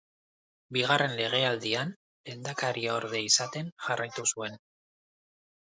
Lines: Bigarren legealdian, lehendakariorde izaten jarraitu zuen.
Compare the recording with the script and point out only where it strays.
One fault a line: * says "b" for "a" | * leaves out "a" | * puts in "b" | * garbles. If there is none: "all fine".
all fine